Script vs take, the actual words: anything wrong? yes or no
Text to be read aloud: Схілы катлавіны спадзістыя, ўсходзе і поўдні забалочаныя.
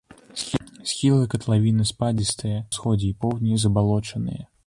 no